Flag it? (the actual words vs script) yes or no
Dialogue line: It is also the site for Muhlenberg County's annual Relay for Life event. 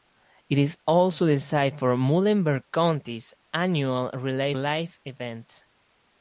yes